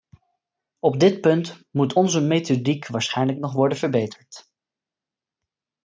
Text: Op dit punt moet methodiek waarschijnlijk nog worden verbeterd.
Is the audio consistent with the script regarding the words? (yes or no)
no